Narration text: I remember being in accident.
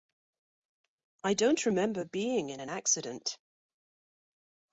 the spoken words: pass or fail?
fail